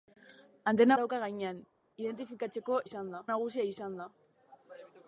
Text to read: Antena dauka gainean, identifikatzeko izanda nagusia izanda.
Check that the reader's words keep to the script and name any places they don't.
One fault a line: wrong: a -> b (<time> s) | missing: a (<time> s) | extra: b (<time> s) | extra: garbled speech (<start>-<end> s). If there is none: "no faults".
no faults